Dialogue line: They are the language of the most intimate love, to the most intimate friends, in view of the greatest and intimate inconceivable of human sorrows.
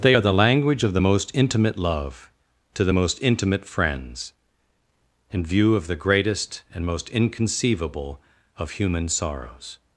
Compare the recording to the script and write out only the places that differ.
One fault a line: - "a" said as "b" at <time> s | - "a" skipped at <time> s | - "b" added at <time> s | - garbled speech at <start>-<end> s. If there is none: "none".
- "intimate" said as "most" at 6.8 s